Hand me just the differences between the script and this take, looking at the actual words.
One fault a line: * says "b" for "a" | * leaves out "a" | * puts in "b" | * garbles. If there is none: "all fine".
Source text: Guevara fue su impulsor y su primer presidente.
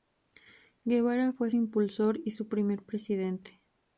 * leaves out "su"